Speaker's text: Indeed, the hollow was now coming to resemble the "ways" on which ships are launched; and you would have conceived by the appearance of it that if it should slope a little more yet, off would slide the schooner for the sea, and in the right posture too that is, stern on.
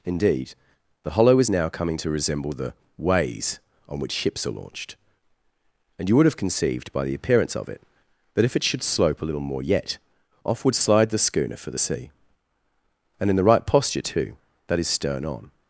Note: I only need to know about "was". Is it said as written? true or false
false